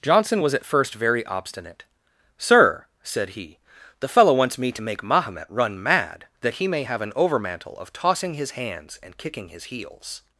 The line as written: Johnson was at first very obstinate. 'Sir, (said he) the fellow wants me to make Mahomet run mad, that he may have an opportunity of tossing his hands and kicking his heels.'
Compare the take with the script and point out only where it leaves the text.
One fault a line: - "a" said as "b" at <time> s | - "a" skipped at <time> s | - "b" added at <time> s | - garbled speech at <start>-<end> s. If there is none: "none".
- "opportunity" said as "overmantle" at 7.1 s